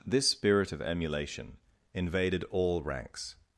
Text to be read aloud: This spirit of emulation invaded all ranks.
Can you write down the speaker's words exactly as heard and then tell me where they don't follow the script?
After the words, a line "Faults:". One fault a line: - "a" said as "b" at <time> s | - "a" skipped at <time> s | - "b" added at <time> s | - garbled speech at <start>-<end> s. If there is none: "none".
This spirit of emulation invaded all ranks.
Faults:
none